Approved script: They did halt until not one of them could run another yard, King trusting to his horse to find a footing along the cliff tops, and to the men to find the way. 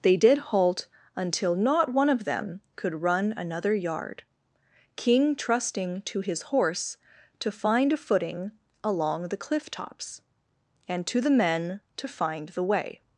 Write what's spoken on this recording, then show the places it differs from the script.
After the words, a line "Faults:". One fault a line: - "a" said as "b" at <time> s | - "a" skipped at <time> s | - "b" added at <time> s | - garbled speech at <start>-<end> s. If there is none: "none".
They did halt until not one of them could run another yard, King trusting to his horse to find a footing along the cliff tops, and to the men to find the way.
Faults:
none